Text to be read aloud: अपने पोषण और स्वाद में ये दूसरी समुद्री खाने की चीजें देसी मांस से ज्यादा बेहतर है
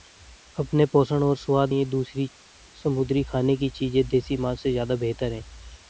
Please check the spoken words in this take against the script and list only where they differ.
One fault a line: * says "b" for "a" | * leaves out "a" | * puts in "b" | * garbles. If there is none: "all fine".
* leaves out "में"